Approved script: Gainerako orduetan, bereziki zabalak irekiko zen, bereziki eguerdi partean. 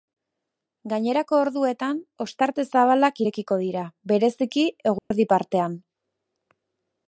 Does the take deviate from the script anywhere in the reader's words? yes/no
yes